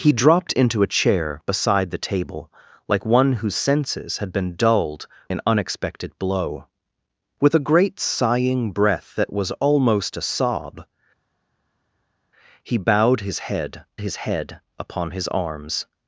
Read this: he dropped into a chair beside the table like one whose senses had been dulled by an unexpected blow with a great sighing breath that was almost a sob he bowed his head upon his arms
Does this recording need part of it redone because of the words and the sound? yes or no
yes